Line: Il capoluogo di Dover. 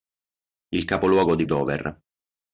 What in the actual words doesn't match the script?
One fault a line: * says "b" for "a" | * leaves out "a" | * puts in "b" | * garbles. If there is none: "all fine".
all fine